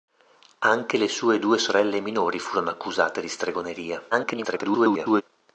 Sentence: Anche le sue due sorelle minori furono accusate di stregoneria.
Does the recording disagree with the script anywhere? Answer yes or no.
yes